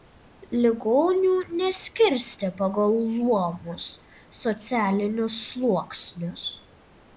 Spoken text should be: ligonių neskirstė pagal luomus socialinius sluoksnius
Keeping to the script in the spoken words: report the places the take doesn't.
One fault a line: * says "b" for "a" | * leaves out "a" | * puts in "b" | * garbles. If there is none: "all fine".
all fine